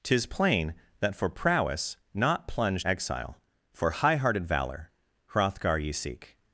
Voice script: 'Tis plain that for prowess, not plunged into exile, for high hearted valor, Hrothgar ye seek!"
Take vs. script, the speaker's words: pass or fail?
fail